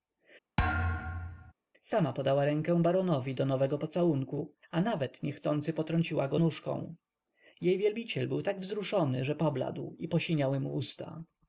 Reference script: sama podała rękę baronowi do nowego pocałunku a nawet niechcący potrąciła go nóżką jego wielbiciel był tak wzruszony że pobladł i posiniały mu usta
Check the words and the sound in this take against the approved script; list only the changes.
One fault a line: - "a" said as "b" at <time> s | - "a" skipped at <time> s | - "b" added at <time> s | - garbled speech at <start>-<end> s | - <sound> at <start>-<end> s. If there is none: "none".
- thud at 0.6-1.5 s
- "jego" said as "jej" at 7.6 s